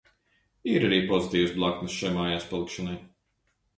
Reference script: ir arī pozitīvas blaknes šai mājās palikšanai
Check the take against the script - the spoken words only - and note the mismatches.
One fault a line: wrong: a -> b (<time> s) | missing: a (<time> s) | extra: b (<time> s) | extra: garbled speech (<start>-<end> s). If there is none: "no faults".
no faults